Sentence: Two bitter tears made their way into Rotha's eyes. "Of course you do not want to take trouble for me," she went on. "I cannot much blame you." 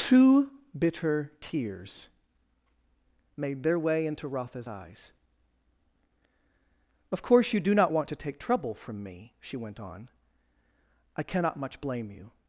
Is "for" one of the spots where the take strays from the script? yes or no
yes